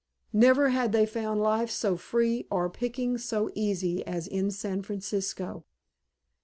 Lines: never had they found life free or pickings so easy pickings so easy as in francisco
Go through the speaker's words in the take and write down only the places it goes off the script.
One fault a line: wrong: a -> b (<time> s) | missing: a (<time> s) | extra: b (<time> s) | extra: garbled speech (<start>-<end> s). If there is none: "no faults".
extra: so (1.7 s)
missing: pickings so easy (4.0 s)
extra: san (4.5 s)